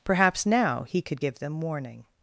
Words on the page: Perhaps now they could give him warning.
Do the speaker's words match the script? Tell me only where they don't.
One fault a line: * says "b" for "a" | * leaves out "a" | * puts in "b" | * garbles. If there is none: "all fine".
* says "he" for "they"
* says "them" for "him"